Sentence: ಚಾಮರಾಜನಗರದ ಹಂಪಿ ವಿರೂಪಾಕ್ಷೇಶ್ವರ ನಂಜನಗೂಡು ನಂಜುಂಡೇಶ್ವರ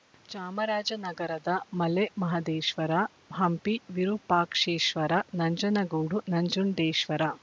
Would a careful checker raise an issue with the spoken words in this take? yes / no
yes